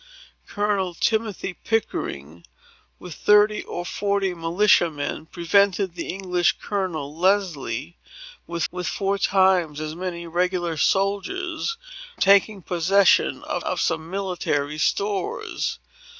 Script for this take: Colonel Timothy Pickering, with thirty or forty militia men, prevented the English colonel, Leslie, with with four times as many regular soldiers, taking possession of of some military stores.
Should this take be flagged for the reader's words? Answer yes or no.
no